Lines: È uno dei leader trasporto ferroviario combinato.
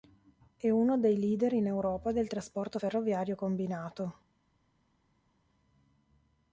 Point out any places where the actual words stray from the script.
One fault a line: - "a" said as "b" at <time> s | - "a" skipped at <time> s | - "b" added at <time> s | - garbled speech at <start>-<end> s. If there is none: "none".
- "in Europa del" added at 1.5 s